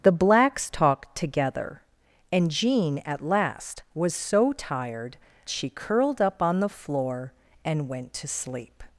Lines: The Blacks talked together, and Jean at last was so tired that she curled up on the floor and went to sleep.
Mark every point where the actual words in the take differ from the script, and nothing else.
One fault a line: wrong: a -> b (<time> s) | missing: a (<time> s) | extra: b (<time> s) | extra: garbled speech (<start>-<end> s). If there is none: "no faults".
missing: that (5.2 s)